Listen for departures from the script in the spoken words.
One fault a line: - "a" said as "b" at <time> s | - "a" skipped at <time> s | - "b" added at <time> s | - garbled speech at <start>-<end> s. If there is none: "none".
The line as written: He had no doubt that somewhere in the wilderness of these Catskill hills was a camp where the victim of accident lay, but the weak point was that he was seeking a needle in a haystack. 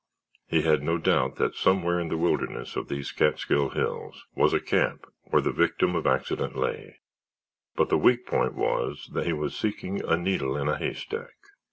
none